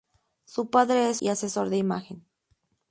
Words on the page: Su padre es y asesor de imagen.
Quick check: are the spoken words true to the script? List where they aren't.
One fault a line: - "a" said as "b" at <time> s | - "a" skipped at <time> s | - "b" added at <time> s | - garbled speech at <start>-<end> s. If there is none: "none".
none